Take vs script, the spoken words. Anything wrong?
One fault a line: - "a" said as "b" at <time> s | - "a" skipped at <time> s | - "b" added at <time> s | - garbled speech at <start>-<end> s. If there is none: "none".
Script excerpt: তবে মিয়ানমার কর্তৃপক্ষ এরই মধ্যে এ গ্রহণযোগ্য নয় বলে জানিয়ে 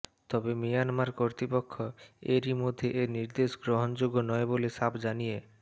- "নির্দেশ" added at 3.2 s
- "সাফ" added at 4.7 s